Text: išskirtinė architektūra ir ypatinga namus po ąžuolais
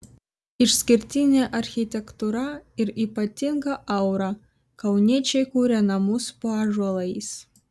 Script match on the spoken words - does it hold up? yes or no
no